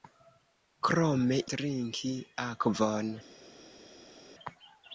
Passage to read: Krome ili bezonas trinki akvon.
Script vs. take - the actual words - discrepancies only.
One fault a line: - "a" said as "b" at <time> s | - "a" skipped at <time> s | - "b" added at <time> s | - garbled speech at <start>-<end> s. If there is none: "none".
- "ili bezonas" skipped at 1.4 s